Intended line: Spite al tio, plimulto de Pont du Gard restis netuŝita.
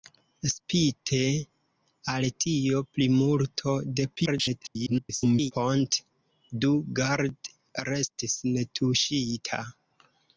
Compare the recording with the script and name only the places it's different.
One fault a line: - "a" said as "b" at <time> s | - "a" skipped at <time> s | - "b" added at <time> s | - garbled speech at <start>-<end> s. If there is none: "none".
- garbled speech at 4.2-5.5 s